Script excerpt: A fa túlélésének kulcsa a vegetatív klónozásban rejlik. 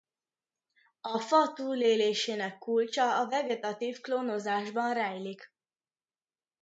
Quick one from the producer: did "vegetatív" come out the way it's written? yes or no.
yes